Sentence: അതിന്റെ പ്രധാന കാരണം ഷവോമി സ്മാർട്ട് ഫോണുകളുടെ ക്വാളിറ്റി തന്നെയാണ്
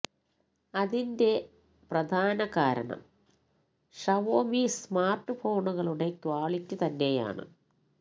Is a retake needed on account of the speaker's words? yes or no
no